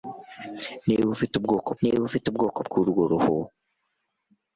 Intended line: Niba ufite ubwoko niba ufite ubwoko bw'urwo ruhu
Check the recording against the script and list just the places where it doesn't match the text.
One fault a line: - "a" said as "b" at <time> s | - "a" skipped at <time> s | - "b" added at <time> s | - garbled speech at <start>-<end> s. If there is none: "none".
none